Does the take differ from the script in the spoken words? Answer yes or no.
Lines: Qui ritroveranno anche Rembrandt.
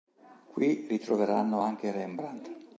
no